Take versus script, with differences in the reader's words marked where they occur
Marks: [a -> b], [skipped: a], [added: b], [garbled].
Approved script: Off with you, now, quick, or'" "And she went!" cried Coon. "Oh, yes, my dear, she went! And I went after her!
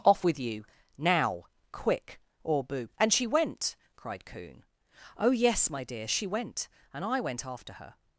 Off with you, now, quick, or'" [added: boo] "And she went!" cried Coon. "Oh, yes, my dear, she went! And I went after her!